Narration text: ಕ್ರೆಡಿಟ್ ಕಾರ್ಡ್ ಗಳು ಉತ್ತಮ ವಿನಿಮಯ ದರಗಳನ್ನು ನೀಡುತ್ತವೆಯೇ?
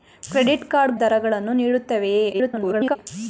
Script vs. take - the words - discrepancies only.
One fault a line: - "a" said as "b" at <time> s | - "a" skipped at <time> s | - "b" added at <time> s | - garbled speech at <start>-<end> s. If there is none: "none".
- "ಗಳು ಉತ್ತಮ ವಿನಿಮಯ" skipped at 1.0 s
- garbled speech at 2.3-3.0 s